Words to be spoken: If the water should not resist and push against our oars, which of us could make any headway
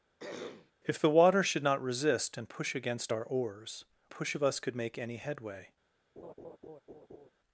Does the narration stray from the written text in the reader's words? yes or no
yes